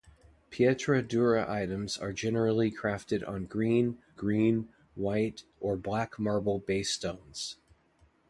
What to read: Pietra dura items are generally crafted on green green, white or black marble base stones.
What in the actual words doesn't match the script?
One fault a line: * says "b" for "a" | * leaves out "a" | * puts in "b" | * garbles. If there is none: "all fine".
all fine